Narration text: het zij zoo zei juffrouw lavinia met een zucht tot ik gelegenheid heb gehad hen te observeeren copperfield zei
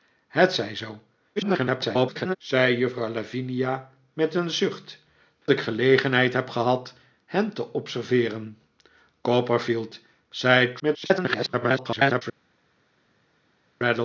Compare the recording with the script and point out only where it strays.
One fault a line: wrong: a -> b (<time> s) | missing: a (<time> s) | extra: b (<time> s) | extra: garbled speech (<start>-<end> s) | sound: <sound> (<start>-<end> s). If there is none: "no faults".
extra: garbled speech (1.4-2.4 s)
missing: tot (5.0 s)
extra: garbled speech (10.8-12.2 s)